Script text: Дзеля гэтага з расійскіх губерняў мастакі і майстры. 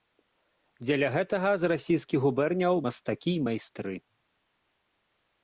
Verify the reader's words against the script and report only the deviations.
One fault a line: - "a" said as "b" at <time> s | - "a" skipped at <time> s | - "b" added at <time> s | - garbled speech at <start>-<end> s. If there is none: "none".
none